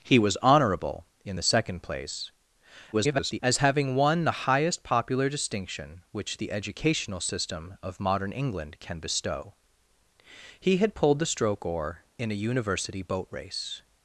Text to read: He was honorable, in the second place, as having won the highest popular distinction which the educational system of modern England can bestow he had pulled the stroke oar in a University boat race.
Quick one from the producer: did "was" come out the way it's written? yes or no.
yes